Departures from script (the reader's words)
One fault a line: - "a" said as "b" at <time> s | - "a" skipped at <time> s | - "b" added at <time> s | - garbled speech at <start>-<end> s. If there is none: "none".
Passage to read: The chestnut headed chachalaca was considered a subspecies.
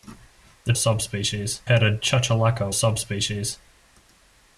- "chestnut" said as "subspecies" at 0.8 s
- "was considered a" skipped at 2.7 s